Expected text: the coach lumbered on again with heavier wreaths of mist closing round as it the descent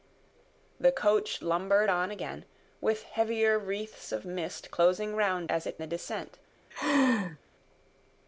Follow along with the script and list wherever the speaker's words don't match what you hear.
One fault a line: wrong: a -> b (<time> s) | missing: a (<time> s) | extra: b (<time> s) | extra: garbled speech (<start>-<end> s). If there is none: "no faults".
no faults